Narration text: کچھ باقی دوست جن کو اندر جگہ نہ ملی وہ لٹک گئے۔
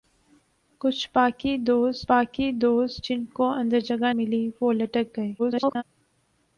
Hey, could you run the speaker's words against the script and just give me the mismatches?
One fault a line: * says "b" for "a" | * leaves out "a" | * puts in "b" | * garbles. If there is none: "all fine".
* puts in "باقی دوست"
* leaves out "نہ"
* garbles